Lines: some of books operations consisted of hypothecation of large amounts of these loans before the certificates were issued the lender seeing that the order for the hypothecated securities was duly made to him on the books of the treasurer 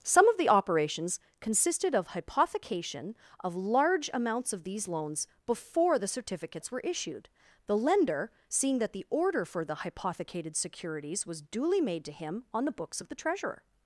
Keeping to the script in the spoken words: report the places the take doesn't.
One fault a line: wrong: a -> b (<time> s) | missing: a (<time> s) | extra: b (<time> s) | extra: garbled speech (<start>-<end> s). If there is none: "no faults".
wrong: books -> the (0.4 s)